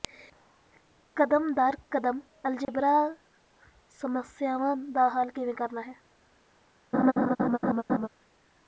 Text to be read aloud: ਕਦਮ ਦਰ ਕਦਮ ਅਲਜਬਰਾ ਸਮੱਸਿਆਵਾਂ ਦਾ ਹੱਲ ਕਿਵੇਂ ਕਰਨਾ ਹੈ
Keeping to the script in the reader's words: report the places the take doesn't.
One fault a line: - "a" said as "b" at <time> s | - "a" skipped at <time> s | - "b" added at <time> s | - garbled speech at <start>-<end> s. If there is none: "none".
none